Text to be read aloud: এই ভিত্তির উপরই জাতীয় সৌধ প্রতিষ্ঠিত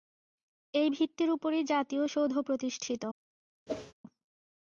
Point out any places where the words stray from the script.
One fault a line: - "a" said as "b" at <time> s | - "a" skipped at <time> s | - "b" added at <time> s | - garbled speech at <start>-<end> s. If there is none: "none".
none